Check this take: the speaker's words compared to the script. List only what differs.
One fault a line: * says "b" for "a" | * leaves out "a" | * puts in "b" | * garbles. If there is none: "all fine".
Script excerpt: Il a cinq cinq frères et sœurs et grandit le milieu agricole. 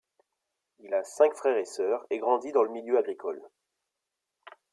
* leaves out "cinq"
* puts in "dans"